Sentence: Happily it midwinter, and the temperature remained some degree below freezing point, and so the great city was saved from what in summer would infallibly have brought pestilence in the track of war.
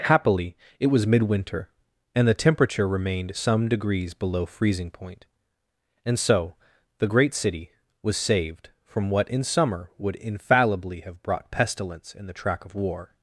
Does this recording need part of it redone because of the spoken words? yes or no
yes